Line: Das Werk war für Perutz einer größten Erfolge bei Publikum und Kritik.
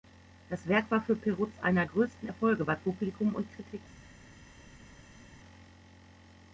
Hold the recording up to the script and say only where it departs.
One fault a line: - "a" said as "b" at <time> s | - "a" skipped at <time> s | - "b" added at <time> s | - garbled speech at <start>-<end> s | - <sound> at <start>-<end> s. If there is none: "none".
none